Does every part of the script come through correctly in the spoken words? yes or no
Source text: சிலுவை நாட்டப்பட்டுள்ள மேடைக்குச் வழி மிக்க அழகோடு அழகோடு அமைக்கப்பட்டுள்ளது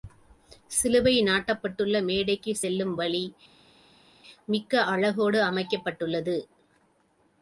no